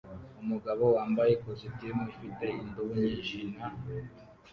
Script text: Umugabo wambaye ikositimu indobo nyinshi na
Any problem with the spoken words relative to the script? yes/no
yes